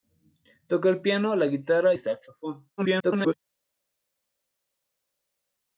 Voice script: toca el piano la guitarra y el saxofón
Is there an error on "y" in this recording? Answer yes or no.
yes